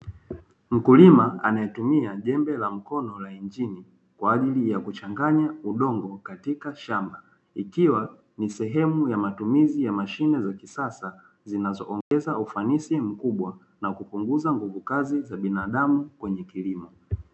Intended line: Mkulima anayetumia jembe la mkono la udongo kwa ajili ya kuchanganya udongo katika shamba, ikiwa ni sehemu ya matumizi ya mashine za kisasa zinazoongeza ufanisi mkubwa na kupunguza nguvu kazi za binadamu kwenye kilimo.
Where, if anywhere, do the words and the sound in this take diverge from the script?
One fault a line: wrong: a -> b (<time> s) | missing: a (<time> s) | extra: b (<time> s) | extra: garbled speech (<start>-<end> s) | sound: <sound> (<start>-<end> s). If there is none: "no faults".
wrong: udongo -> injini (3.3 s)
sound: dropout (12.0-12.1 s)